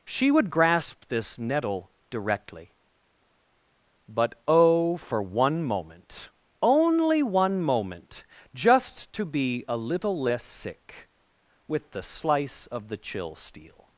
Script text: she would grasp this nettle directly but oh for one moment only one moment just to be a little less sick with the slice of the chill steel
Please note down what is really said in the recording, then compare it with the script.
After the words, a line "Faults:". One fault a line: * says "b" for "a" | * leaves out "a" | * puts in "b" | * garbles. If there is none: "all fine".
she would grasp this nettle directly but oh for one moment only one moment just to be a little less sick with the slice of the chill steel
Faults:
all fine